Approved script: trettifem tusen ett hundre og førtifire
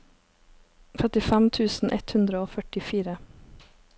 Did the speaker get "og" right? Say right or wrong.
right